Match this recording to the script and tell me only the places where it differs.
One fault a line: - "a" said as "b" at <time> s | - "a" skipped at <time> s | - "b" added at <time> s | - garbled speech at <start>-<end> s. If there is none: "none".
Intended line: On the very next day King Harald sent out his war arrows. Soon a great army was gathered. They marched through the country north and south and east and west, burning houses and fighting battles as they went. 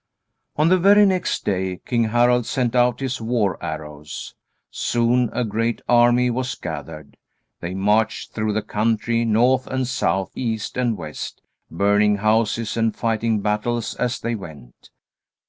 - "and" skipped at 10.3 s